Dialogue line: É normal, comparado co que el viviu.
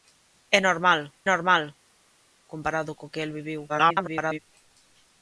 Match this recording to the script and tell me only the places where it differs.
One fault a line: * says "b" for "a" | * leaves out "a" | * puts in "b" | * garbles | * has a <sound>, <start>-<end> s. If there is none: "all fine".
* puts in "normal"
* garbles